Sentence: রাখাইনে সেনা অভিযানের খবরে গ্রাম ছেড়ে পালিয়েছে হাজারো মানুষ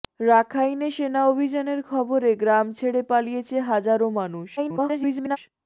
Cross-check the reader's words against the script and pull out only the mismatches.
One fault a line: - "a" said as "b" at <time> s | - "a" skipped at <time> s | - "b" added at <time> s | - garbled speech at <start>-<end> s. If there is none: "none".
- garbled speech at 4.6-5.4 s